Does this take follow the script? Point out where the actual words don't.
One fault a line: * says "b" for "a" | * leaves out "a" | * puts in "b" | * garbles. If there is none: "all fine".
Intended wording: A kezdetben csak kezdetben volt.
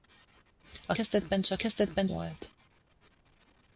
all fine